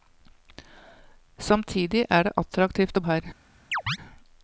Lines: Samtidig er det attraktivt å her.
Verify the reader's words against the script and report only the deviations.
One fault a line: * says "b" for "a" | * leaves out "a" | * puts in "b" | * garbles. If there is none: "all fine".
all fine